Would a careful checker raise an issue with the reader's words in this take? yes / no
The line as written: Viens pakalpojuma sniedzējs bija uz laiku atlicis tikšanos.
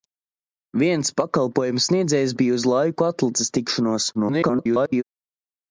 yes